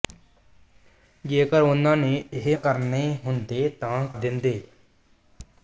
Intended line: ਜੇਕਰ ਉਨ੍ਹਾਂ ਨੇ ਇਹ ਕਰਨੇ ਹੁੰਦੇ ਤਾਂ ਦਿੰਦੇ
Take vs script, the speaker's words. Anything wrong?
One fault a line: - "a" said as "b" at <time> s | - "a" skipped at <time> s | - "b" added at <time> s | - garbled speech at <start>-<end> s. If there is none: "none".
none